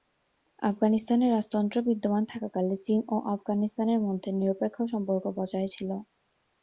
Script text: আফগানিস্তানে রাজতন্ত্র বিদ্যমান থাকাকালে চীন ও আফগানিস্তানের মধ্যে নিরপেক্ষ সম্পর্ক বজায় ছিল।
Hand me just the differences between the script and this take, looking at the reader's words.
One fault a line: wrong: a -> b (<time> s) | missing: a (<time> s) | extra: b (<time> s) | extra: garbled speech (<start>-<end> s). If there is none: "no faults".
no faults